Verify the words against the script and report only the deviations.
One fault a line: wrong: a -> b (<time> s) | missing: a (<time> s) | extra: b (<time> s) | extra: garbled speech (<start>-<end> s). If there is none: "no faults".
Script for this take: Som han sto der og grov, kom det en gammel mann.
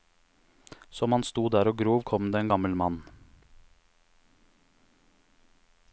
no faults